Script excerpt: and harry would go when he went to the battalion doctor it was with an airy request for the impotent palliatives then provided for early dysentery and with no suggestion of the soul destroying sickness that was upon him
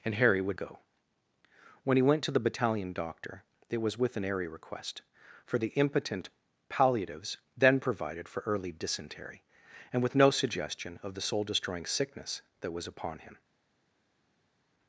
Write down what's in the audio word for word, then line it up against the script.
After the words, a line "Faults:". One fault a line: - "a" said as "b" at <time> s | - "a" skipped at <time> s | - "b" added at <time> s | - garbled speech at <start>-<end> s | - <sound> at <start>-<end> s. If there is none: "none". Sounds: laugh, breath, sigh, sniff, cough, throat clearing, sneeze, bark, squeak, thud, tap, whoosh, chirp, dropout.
and harry would go when he went to the battalion doctor it was with an airy request for the impotent palliatives then provided for early dysentery and with no suggestion of the soul destroying sickness that was upon him
Faults:
none